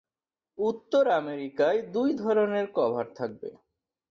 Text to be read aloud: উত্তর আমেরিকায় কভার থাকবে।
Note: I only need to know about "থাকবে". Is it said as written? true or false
true